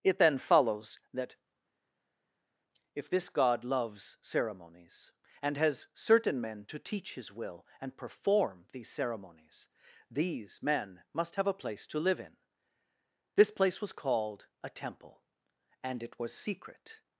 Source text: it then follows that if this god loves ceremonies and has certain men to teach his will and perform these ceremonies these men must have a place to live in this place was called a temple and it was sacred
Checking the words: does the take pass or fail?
fail